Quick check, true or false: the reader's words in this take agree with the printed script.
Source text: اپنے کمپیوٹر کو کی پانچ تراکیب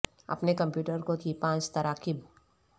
true